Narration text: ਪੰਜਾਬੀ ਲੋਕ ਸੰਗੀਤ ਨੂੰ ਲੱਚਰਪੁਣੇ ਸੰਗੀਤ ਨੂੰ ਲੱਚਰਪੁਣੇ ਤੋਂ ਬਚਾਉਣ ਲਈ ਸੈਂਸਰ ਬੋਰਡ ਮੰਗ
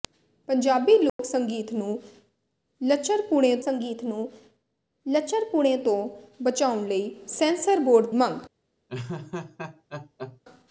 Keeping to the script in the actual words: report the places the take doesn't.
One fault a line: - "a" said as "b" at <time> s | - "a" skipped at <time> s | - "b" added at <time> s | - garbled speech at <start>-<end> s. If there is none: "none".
none